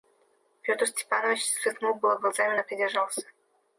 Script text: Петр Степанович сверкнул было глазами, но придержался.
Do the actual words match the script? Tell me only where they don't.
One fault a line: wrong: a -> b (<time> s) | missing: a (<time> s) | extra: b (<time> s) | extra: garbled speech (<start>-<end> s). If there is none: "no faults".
no faults